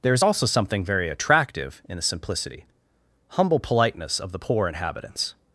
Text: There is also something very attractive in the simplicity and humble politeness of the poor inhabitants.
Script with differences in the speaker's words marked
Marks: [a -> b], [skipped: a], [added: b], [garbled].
There is also something very attractive in the simplicity [skipped: and] humble politeness of the poor inhabitants.